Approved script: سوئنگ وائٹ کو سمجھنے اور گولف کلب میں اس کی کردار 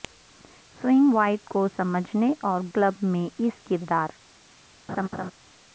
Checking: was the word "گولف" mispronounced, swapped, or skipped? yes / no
yes